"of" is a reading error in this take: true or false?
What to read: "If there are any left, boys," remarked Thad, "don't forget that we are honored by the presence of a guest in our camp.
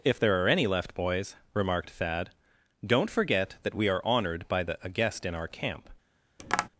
true